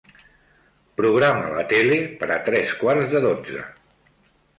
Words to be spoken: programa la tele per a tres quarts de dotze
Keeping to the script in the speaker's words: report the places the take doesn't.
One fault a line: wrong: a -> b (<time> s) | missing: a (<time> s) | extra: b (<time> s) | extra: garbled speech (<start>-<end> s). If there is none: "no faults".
no faults